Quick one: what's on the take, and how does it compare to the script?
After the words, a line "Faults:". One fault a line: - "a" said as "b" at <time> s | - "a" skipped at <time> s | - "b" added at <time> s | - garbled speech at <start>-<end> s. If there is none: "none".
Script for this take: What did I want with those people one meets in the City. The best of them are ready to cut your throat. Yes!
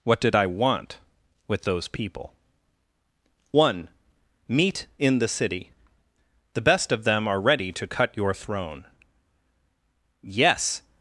What did I want with those people one meet in the City. The best of them are ready to cut your throne. Yes!
Faults:
- "meets" said as "meet" at 4.5 s
- "throat" said as "throne" at 8.3 s